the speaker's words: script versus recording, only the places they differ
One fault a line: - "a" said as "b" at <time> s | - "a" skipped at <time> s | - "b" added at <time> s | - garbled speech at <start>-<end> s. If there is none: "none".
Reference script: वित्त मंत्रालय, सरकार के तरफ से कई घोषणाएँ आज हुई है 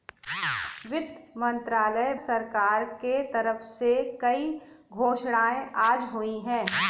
none